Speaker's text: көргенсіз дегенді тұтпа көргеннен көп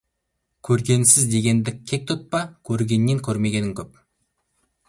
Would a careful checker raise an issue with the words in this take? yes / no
yes